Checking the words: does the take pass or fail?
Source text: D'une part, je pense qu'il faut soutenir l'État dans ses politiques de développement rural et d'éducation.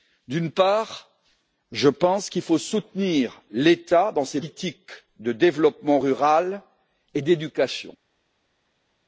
pass